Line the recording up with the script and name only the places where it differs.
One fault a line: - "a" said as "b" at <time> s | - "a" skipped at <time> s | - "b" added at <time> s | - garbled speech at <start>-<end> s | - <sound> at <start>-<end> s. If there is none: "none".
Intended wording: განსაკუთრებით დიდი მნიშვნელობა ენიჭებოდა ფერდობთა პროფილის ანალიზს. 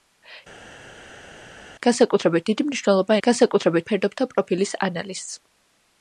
- "ენიჭებოდა" said as "განსაკუთრებით" at 3.3 s